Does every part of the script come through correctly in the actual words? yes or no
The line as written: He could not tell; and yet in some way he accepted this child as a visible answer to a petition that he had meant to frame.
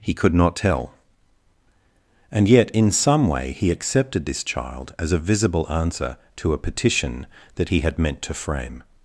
yes